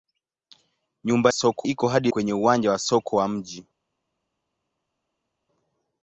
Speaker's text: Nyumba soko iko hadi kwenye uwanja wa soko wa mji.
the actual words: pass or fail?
pass